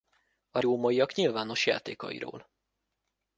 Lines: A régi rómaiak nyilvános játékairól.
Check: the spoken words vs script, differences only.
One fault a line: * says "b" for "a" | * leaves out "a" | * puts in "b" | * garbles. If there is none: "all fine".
* leaves out "régi"